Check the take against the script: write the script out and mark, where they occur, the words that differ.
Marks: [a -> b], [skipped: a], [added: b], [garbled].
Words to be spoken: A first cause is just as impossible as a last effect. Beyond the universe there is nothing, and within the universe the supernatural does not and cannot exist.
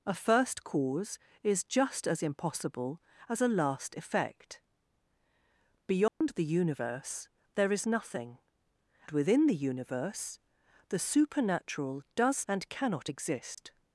A first cause is just as impossible as a last effect. Beyond the universe there is nothing, [skipped: and] within the universe the supernatural does [skipped: not] and cannot exist.